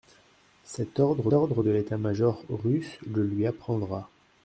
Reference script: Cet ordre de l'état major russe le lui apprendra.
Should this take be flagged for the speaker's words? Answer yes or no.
yes